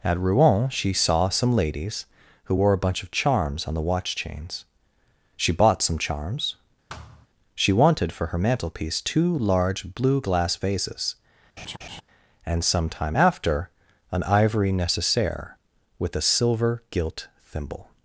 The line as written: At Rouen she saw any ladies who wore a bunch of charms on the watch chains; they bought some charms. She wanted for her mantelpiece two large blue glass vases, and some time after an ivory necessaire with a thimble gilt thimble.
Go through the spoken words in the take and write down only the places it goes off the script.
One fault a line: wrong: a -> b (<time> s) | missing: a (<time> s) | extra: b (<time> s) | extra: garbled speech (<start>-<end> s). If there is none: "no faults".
wrong: any -> some (1.3 s)
wrong: they -> she (5.4 s)
wrong: thimble -> silver (16.2 s)